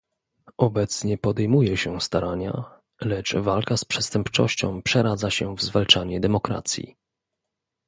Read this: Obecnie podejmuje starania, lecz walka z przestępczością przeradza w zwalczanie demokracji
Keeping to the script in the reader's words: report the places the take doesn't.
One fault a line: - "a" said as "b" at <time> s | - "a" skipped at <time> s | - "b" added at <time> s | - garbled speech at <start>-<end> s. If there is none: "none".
- "się" added at 1.8 s
- "się" added at 5.3 s